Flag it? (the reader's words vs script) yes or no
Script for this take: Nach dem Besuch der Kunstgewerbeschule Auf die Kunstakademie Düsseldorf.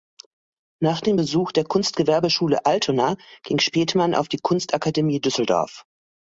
yes